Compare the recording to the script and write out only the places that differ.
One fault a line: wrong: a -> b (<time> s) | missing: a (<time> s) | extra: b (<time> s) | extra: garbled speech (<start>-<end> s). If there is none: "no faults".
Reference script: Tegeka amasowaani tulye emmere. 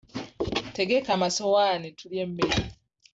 no faults